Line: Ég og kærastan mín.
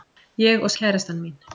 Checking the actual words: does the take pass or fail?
pass